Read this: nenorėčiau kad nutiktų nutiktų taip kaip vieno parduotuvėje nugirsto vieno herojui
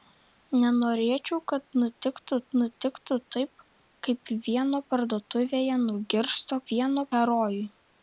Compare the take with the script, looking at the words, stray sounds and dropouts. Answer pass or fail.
pass